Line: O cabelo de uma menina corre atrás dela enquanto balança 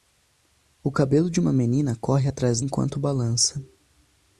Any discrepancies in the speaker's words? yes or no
yes